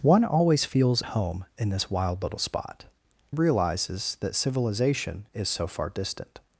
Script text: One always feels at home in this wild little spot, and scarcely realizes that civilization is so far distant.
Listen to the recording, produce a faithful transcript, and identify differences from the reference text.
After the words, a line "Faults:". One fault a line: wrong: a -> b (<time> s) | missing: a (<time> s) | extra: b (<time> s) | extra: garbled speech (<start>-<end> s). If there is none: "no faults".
One always feels home in this wild little spot, realizes that civilization is so far distant.
Faults:
missing: at (1.0 s)
missing: and scarcely (2.9 s)